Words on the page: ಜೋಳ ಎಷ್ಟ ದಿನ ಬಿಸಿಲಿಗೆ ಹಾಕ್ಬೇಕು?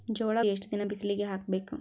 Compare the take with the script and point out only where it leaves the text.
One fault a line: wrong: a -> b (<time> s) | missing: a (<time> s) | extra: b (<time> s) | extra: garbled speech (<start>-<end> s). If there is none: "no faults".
no faults